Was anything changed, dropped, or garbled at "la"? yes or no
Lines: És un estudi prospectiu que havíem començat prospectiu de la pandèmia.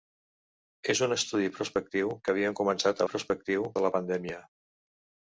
no